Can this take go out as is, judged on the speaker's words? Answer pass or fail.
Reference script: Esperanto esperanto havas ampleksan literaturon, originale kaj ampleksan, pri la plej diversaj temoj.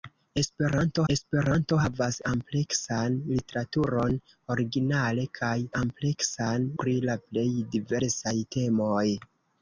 pass